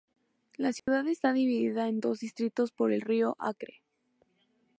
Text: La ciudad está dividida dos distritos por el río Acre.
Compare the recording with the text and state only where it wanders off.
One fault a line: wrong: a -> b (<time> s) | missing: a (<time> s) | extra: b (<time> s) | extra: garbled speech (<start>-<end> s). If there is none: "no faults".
extra: en (1.9 s)